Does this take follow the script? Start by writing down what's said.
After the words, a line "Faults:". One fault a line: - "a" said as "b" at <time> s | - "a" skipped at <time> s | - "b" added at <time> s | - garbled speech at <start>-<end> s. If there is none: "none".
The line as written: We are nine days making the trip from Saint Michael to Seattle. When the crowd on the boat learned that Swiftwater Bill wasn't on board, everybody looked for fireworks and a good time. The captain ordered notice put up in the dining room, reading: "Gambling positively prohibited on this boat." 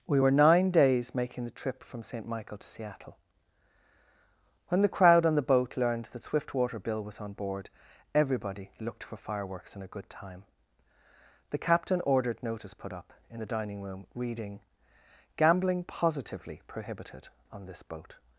We were nine days making the trip from Saint Michael to Seattle. When the crowd on the boat learned that Swiftwater Bill was on board, everybody looked for fireworks and a good time. The captain ordered notice put up in the dining room, reading: "Gambling positively prohibited on this boat."
Faults:
- "are" said as "were" at 0.2 s
- "wasn't" said as "was" at 7.0 s